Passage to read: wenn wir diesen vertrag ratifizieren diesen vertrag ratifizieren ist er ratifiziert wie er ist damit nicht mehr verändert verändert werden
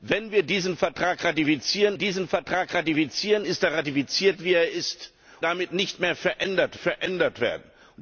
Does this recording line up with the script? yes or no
yes